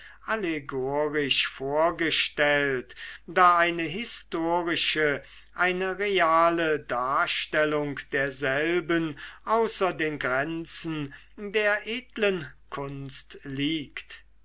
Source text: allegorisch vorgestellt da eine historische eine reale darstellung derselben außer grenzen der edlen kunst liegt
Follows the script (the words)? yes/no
no